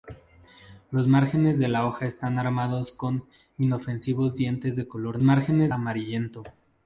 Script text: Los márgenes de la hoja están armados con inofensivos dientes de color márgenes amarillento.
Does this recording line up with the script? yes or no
yes